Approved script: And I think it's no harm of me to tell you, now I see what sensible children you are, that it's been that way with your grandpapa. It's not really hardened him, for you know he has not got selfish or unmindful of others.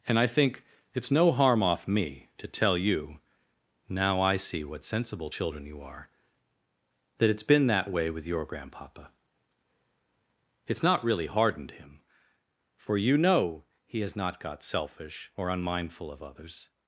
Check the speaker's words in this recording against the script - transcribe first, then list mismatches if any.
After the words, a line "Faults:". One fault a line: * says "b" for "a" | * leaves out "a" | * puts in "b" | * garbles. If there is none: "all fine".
And I think it's no harm off me to tell you, now I see what sensible children you are, that it's been that way with your grandpapa. It's not really hardened him, for you know he has not got selfish or unmindful of others.
Faults:
* says "off" for "of"